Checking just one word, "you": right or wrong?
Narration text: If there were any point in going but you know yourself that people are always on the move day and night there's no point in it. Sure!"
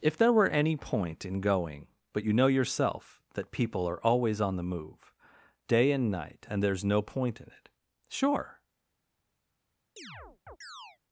right